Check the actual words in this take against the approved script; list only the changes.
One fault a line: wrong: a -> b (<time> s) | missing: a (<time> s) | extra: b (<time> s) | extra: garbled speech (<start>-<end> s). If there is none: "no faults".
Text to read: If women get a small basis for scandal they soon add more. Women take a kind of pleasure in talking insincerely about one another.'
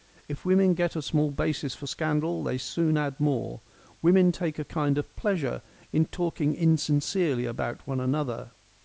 no faults